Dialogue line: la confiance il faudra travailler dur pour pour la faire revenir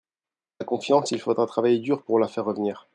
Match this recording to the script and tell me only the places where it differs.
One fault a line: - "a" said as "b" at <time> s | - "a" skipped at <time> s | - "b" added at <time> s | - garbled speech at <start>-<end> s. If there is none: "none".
- "pour" skipped at 2.2 s